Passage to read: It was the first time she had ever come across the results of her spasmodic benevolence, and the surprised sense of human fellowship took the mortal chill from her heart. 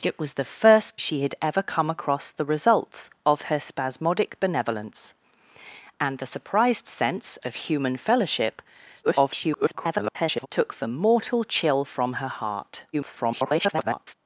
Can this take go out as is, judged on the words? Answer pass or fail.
fail